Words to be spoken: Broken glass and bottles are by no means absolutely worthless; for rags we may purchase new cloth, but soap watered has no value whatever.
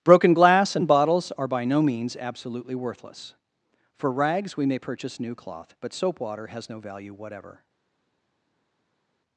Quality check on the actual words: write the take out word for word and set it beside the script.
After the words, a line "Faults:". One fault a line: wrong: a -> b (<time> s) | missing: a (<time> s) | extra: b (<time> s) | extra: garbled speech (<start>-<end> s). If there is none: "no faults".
Broken glass and bottles are by no means absolutely worthless; for rags we may purchase new cloth, but soap water has no value whatever.
Faults:
wrong: watered -> water (6.2 s)